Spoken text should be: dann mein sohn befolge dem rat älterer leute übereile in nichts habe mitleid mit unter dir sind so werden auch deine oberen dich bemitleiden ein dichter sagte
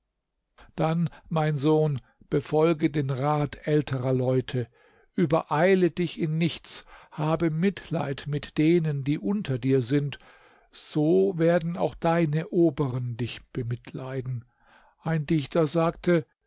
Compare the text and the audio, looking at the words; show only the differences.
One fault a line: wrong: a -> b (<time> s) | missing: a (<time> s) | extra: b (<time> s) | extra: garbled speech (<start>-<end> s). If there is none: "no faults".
wrong: dem -> den (2.9 s)
extra: dich (5.9 s)
extra: denen die (8.6 s)